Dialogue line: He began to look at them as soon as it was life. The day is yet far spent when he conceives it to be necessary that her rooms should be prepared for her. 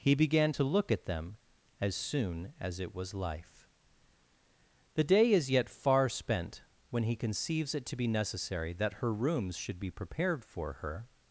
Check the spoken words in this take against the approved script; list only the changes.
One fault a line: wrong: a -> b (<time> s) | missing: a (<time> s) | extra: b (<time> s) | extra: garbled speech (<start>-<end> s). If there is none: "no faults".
no faults